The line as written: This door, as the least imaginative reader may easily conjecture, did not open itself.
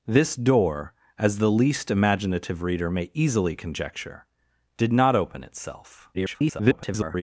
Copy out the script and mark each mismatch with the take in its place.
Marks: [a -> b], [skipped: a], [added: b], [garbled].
This door, as the least imaginative reader may easily conjecture, did not open itself. [garbled]